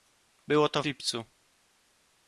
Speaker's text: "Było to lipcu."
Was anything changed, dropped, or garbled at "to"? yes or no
no